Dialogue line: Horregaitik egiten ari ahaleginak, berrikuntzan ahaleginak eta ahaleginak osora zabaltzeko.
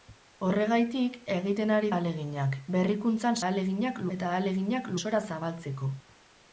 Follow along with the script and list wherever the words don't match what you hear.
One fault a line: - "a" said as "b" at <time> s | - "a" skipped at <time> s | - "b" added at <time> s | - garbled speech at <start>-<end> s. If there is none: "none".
none